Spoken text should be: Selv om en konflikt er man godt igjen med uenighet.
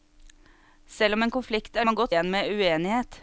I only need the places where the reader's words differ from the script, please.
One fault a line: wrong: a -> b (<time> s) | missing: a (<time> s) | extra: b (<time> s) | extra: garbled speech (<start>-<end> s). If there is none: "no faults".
no faults